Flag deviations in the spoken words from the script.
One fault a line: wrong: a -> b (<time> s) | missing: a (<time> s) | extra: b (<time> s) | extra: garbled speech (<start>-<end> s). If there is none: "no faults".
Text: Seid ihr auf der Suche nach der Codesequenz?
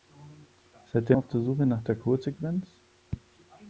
no faults